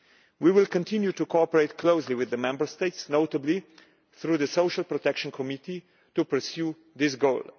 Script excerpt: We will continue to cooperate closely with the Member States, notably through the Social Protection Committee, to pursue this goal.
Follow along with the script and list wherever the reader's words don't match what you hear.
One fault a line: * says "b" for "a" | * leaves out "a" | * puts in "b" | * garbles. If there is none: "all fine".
all fine